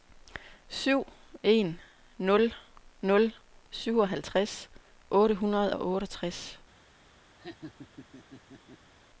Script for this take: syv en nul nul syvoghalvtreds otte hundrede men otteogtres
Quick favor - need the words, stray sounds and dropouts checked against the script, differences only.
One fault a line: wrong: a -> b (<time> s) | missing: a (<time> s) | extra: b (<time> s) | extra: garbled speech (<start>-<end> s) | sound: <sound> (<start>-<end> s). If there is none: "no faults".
wrong: men -> og (5.7 s)
sound: laugh (7.4-8.9 s)